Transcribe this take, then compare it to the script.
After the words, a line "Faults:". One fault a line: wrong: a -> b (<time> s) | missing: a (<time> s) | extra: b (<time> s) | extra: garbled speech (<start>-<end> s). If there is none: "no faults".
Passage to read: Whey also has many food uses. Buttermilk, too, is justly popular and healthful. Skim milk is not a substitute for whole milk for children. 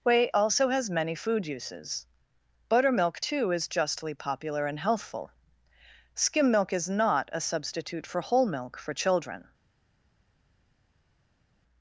Whey also has many food uses. Buttermilk, too, is justly popular and healthful. Skim milk is not a substitute for whole milk for children.
Faults:
no faults